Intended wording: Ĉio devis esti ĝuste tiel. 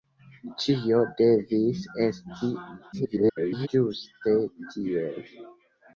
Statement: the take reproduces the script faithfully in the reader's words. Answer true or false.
false